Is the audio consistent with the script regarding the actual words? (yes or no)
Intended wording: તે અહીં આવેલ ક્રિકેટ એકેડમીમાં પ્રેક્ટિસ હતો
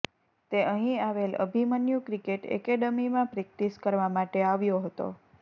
no